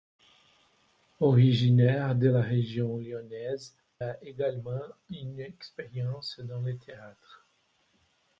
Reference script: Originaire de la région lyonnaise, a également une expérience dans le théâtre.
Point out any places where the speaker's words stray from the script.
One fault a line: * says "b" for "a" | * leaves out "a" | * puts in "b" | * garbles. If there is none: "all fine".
all fine